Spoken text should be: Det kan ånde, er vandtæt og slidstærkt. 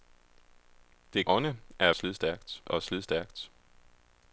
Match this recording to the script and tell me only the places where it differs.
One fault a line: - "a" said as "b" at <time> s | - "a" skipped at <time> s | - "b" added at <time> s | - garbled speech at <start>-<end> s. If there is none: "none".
- "kan" skipped at 1.3 s
- "vandtæt" said as "slidstærkt" at 1.9 s